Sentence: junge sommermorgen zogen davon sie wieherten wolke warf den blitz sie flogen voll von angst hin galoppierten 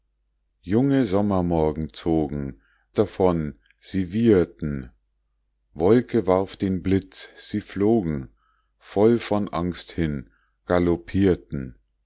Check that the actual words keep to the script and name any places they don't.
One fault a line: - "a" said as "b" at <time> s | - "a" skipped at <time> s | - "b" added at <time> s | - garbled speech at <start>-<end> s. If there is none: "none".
none